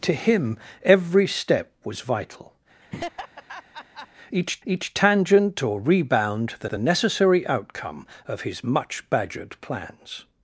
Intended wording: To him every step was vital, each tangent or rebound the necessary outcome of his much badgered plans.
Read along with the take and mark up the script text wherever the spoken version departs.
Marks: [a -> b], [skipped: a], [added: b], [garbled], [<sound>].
To him every step was vital, [laugh] each [added: each] tangent or rebound the [added: the] necessary outcome of his much badgered plans.